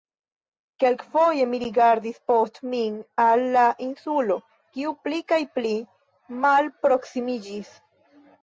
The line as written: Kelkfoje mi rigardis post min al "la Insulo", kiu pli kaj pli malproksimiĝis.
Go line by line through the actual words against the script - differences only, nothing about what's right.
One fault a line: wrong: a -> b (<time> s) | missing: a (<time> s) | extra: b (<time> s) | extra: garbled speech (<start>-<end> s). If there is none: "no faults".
no faults